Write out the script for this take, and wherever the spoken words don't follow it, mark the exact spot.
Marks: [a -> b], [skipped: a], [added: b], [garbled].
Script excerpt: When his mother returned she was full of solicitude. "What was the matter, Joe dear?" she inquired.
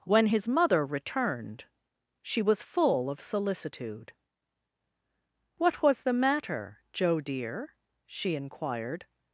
When his mother returned she was full of solicitude. "What was the matter, Joe dear?" she inquired.